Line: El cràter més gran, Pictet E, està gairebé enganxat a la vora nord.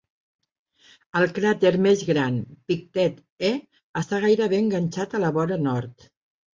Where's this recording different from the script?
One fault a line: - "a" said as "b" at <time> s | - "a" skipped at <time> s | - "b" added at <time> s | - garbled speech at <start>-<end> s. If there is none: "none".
none